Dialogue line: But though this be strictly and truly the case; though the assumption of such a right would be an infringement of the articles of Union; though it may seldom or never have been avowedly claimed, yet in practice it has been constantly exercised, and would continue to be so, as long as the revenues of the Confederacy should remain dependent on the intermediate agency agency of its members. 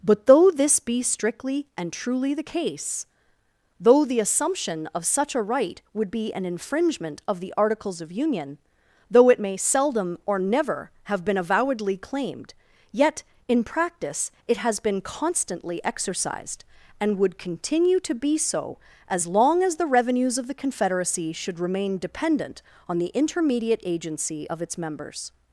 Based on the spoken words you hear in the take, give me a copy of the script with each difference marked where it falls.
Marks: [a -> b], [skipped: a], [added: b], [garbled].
But though this be strictly and truly the case; though the assumption of such a right would be an infringement of the articles of Union; though it may seldom or never have been avowedly claimed, yet in practice it has been constantly exercised, and would continue to be so, as long as the revenues of the Confederacy should remain dependent on the intermediate agency [skipped: agency] of its members.